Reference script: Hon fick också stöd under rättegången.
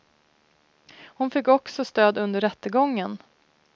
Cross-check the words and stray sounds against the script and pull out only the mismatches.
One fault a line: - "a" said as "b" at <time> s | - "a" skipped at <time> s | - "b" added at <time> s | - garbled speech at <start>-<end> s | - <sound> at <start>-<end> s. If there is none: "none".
none